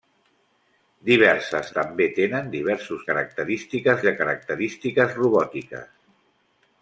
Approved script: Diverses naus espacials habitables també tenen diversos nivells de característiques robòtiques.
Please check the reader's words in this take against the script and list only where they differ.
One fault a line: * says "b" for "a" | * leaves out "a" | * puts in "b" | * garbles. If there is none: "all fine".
* leaves out "naus espacials habitables"
* says "característiques" for "nivells"